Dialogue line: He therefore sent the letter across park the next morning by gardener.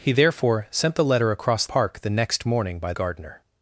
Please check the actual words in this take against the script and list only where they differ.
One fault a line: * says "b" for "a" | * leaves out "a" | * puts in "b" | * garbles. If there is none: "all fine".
all fine